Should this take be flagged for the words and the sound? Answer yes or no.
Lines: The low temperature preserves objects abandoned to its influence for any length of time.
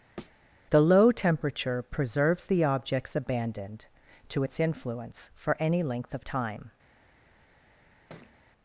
yes